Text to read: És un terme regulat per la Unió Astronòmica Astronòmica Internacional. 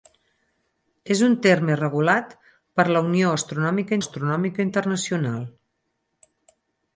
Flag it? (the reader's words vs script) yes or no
no